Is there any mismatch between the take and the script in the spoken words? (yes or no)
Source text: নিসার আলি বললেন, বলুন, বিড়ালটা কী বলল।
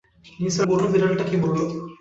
yes